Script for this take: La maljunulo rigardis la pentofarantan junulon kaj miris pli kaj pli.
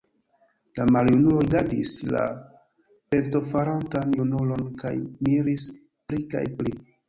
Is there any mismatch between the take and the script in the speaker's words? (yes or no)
no